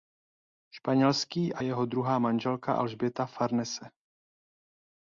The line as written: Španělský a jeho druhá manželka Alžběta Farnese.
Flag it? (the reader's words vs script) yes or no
no